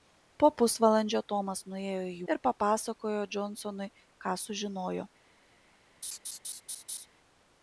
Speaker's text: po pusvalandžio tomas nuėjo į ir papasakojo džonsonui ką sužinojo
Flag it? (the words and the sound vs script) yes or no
yes